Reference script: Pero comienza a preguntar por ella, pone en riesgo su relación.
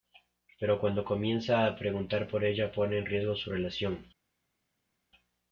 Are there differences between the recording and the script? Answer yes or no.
yes